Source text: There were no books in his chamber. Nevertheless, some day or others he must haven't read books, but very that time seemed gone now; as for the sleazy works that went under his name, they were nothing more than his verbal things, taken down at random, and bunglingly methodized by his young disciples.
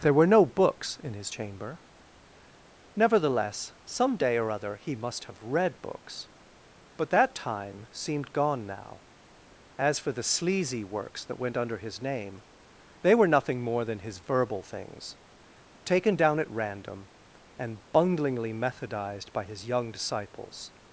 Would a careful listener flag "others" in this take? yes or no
yes